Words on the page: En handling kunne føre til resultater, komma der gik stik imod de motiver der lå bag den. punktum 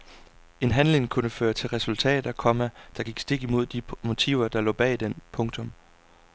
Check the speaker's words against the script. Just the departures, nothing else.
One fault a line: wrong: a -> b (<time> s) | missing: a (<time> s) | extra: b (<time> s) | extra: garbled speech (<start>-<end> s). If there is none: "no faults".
no faults